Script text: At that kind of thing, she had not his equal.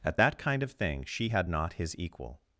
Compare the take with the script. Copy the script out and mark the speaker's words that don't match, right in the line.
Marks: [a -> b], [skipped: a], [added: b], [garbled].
At that kind of thing, she had not his equal.